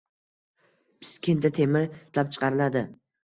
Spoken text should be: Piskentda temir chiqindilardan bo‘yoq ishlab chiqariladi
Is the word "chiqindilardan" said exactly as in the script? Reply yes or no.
no